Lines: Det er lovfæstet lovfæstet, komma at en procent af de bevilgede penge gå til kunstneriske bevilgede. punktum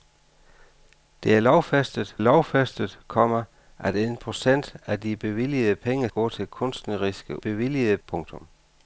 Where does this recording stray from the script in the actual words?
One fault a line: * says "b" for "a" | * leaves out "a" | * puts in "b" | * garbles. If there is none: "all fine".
all fine